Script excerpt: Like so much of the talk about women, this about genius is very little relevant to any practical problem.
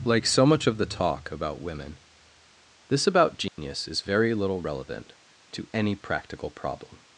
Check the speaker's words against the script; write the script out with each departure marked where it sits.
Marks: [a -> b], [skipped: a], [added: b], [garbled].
Like so much of the talk about women, this about genius is very little relevant to any practical problem.